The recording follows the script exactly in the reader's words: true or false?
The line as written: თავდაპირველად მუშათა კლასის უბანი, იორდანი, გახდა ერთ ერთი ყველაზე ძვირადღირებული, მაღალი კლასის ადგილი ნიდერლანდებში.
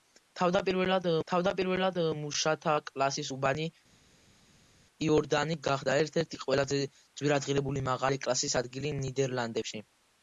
false